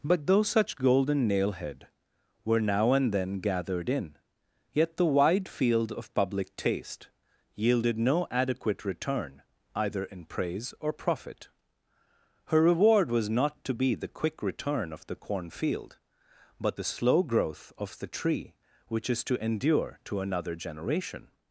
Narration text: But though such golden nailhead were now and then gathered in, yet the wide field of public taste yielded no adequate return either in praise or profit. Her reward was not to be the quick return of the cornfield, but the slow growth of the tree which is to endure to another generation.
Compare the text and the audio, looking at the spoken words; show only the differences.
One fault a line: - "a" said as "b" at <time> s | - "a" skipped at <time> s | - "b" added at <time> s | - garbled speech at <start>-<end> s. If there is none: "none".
none